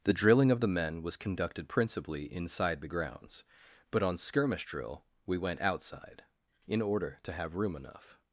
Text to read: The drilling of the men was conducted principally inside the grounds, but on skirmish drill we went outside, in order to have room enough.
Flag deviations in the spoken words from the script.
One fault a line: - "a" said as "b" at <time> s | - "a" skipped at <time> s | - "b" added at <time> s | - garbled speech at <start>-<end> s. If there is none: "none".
none